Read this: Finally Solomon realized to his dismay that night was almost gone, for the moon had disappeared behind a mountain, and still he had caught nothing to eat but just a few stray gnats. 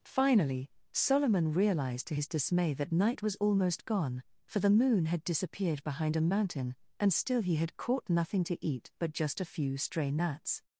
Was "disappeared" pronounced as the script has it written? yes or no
yes